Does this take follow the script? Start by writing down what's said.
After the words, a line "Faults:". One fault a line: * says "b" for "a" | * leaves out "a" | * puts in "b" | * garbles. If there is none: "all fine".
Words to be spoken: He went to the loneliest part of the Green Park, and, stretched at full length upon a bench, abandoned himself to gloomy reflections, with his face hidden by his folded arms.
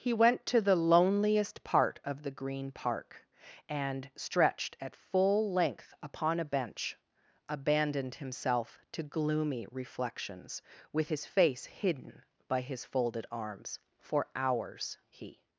He went to the loneliest part of the Green Park, and, stretched at full length upon a bench, abandoned himself to gloomy reflections, with his face hidden by his folded arms. For hours he
Faults:
* puts in "For hours he"